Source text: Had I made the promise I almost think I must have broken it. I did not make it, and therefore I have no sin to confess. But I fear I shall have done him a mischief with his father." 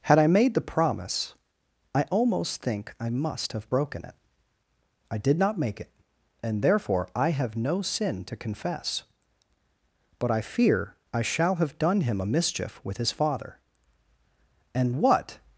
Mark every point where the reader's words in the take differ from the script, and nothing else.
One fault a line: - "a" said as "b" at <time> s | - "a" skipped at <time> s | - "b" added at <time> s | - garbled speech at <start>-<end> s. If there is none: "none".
- "And what" added at 14.7 s